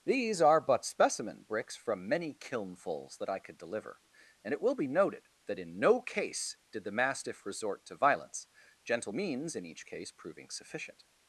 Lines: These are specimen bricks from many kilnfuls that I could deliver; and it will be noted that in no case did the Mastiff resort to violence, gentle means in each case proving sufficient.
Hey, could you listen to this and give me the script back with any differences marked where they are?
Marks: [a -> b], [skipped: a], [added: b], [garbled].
These are [added: but] specimen bricks from many kilnfuls that I could deliver; and it will be noted that in no case did the Mastiff resort to violence, gentle means in each case proving sufficient.